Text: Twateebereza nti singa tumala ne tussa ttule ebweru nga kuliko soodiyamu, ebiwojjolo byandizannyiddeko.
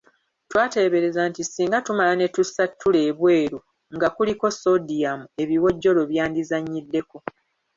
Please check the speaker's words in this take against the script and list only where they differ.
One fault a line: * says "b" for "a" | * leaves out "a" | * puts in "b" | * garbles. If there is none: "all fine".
all fine